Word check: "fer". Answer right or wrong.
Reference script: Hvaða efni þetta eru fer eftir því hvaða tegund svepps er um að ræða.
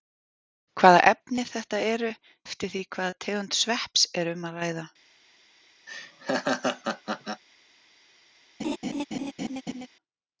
wrong